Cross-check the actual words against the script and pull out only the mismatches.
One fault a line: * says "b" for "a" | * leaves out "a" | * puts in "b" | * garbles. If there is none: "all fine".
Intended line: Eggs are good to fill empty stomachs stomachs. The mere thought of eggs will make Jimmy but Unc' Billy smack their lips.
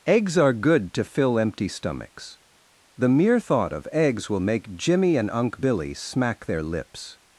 * leaves out "stomachs"
* says "and" for "but"